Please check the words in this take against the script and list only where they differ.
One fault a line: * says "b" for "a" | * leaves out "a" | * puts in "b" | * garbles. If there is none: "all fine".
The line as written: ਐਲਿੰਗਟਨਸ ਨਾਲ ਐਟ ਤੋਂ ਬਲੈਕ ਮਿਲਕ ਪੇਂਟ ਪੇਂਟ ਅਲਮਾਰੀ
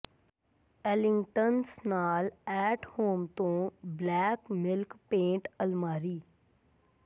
* puts in "ਹੋਮ"
* leaves out "ਪੇਂਟ"